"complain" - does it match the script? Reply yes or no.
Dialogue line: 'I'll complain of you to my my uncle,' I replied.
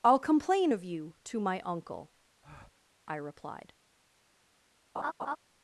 yes